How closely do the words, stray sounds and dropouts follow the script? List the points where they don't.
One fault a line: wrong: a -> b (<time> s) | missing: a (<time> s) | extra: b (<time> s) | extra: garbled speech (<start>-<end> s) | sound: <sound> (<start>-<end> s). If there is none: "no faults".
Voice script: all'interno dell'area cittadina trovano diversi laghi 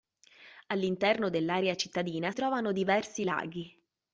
no faults